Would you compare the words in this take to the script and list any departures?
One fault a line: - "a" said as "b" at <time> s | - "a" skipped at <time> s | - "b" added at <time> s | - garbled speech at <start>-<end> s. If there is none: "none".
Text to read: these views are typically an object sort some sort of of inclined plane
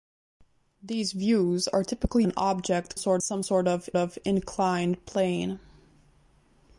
none